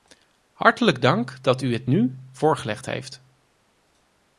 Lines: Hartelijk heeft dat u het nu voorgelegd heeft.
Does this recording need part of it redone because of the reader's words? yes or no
yes